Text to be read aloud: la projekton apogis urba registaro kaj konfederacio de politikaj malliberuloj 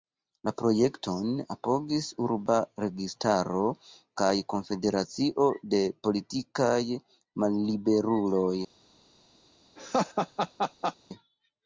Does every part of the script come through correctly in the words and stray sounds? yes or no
no